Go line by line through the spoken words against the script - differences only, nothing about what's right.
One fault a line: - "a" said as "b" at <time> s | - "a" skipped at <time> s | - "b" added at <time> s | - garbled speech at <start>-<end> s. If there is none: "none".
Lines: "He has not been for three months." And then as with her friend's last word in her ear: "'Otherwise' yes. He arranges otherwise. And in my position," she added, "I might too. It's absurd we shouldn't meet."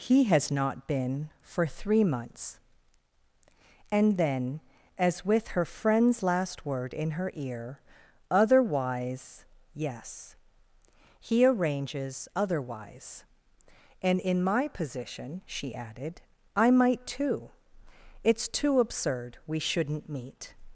- "too" added at 18.5 s